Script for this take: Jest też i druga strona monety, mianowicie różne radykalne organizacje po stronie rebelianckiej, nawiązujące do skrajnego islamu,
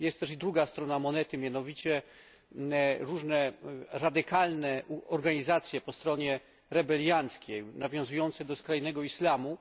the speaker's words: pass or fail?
pass